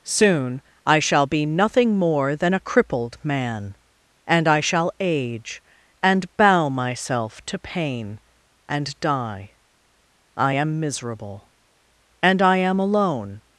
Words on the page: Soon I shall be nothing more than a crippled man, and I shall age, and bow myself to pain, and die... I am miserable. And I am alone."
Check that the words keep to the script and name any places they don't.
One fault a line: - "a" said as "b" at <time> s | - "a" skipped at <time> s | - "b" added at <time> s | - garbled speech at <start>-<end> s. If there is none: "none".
none